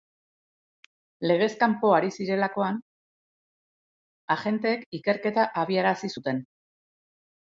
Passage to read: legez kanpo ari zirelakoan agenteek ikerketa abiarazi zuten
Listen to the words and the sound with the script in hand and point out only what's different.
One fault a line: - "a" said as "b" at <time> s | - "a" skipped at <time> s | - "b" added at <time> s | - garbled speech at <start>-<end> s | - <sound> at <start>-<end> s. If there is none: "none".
none